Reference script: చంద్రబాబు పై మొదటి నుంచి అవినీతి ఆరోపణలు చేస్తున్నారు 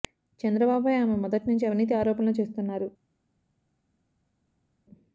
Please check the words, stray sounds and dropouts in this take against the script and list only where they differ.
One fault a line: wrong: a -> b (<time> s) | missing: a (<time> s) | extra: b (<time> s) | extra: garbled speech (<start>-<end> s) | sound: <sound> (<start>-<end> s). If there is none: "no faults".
extra: ఆమె (0.9 s)